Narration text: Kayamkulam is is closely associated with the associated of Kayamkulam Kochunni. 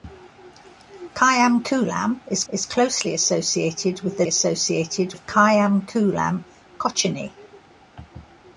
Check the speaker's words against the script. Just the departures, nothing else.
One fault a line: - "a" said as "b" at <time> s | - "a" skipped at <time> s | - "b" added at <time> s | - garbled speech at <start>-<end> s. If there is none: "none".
none